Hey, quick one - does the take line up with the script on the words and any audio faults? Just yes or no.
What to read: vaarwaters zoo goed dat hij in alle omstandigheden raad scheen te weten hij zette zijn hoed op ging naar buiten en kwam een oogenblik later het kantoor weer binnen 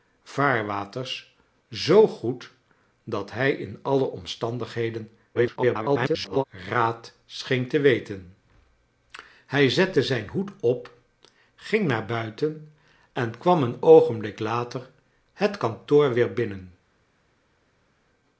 no